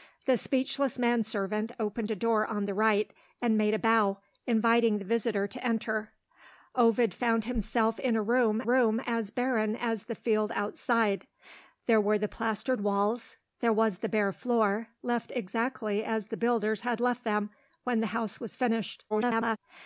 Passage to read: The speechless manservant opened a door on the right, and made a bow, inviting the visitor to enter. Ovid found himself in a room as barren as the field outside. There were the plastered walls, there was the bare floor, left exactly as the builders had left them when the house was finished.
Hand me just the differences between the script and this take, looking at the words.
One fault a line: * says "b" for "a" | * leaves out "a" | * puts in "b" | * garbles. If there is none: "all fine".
* puts in "room"
* garbles